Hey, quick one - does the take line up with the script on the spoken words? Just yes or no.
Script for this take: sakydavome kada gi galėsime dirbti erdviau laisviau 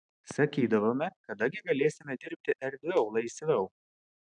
yes